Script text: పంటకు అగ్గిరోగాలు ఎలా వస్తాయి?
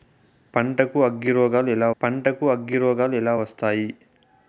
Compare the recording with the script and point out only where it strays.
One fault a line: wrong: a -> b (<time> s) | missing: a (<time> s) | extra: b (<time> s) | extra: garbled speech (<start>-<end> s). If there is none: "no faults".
extra: పంటకు అగ్గిరోగాలు ఎలా (2.0 s)